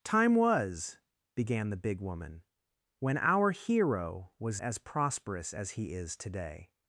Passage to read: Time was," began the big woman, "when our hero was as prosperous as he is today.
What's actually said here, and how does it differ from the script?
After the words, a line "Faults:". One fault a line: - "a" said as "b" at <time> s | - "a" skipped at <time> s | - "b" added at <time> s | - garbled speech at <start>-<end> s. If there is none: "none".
Time was," began the big woman, "when our hero was as prosperous as he is today.
Faults:
none